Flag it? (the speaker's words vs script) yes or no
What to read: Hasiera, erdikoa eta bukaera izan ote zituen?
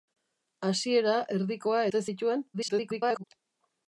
yes